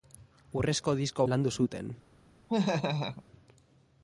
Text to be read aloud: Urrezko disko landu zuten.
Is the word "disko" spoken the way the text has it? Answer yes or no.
yes